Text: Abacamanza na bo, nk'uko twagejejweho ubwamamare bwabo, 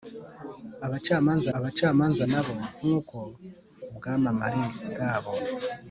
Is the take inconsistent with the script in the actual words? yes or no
yes